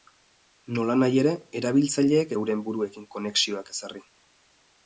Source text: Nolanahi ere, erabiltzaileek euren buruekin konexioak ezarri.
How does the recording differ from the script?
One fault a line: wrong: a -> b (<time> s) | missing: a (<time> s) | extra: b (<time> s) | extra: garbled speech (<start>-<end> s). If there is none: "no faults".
no faults